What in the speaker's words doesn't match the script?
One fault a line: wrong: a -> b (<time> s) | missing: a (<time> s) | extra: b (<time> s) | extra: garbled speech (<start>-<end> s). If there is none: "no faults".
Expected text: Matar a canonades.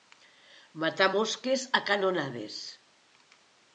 extra: mosques (1.2 s)